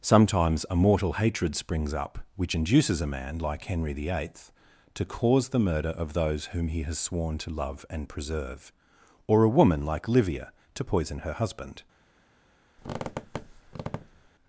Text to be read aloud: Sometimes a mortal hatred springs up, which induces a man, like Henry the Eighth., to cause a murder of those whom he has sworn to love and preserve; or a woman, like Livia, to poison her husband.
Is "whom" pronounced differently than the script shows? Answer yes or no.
no